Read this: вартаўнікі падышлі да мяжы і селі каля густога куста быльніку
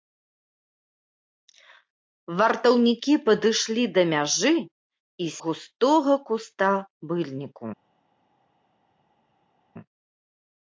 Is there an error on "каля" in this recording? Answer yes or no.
yes